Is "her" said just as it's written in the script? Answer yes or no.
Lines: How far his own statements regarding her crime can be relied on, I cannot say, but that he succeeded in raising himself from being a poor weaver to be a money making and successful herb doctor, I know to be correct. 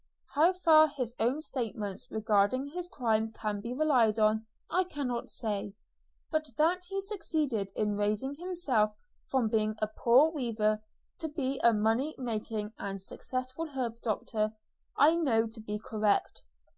no